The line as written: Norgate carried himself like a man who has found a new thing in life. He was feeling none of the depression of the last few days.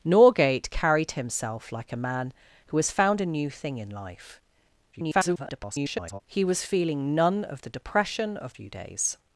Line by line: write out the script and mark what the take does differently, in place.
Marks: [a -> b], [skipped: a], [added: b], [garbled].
Norgate carried himself like a man who has found a new thing in life. [garbled] He was feeling none of the depression of [skipped: the last] few days.